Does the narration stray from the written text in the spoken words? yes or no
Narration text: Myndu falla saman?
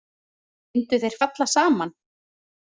yes